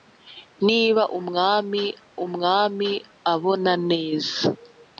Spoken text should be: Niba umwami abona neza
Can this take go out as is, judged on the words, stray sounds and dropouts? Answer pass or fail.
fail